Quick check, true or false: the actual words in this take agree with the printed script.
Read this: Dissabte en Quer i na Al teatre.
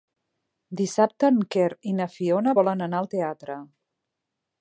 false